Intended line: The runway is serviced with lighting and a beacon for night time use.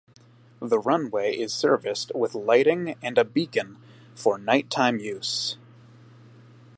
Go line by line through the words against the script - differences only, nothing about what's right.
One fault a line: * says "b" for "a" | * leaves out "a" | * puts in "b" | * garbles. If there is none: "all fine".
all fine